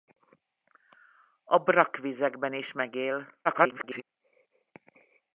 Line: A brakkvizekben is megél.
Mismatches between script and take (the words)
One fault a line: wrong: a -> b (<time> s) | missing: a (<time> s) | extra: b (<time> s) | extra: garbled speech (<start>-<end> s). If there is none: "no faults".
extra: garbled speech (3.4-4.0 s)